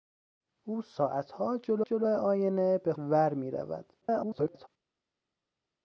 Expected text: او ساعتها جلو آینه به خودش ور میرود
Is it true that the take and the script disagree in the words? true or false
true